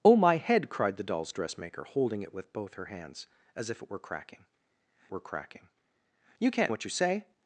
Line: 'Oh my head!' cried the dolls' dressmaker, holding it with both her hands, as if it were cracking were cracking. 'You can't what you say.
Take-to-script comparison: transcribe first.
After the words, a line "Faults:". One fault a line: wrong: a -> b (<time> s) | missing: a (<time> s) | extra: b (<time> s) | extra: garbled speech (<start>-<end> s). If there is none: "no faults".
'Oh my head!' cried the dolls' dressmaker, holding it with both her hands, as if it were cracking were cracking. 'You can't what you say.
Faults:
no faults